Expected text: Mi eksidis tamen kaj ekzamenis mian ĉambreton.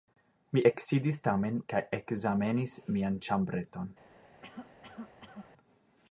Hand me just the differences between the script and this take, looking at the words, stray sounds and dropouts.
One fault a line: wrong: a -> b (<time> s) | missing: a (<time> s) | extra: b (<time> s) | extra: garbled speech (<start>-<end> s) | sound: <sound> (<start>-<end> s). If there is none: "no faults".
sound: cough (4.4-5.5 s)